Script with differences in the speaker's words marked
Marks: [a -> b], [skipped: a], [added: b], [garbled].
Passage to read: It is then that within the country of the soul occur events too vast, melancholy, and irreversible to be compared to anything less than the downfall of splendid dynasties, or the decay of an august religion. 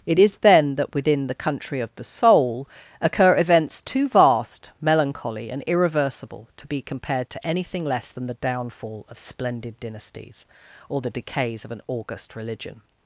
It is then that within the country of the soul occur events too vast, melancholy, and irreversible to be compared to anything less than the downfall of splendid dynasties, or the [decay -> decays] of an august religion.